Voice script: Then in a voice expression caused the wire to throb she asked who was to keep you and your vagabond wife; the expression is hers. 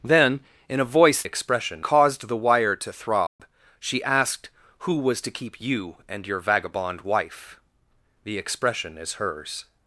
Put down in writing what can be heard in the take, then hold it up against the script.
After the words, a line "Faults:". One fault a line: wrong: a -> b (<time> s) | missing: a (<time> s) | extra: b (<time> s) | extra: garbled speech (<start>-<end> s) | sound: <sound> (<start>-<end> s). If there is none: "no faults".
Then in a voice expression caused the wire to throb she asked who was to keep you and your vagabond wife; the expression is hers.
Faults:
sound: dropout (3.3-3.4 s)